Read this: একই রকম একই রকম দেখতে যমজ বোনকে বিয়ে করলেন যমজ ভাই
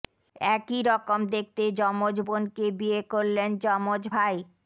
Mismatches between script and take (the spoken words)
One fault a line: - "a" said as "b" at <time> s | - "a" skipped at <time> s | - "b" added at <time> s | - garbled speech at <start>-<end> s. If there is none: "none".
- "একই রকম" skipped at 1.2 s